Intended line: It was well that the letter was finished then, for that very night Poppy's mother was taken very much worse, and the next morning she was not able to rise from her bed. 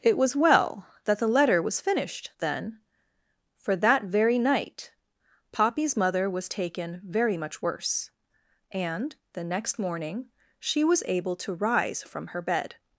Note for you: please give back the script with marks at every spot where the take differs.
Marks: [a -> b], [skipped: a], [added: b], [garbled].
It was well that the letter was finished then, for that very night Poppy's mother was taken very much worse, and the next morning she was [skipped: not] able to rise from her bed.